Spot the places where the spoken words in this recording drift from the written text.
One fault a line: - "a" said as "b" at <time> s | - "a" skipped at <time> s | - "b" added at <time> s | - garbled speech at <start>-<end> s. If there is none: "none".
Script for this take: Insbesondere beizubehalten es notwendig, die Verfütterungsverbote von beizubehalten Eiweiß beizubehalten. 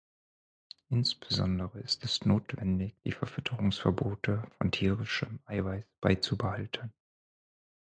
- "beizubehalten" said as "ist" at 1.8 s
- "beizubehalten" said as "tierischem" at 4.7 s